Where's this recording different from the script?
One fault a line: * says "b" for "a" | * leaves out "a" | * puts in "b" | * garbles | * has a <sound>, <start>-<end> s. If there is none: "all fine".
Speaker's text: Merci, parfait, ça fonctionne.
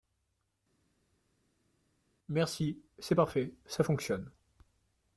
* puts in "c'est"